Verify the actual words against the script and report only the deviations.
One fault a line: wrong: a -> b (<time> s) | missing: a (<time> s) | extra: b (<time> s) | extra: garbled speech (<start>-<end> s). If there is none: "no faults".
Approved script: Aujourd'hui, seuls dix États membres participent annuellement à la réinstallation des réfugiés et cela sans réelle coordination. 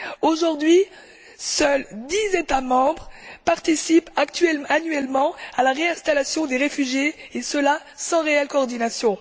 no faults